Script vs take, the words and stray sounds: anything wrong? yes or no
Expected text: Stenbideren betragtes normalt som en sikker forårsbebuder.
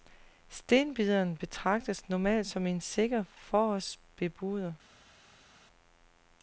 no